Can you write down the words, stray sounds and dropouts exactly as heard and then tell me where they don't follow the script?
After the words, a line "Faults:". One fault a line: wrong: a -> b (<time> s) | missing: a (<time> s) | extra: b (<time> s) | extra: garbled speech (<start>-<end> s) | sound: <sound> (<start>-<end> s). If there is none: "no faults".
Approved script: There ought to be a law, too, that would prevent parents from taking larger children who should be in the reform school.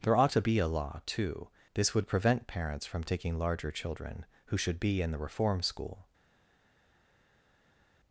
There ought to be a law, too, this would prevent parents from taking larger children who should be in the reform school.
Faults:
wrong: that -> this (1.7 s)